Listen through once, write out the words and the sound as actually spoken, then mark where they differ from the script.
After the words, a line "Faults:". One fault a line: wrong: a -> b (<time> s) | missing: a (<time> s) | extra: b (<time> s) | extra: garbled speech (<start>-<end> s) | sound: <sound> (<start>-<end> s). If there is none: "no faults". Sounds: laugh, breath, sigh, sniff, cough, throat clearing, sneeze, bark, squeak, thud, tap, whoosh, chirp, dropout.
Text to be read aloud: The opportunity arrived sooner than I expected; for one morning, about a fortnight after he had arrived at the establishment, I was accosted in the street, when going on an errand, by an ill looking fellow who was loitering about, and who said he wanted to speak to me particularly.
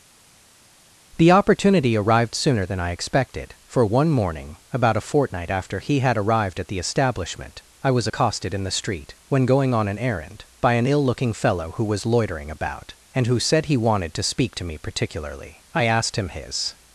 The opportunity arrived sooner than I expected; for one morning, about a fortnight after he had arrived at the establishment, I was accosted in the street, when going on an errand, by an ill looking fellow who was loitering about, and who said he wanted to speak to me particularly. I asked him his
Faults:
extra: I asked him his (15.7 s)